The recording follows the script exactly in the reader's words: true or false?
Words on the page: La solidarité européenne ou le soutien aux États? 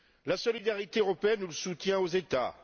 true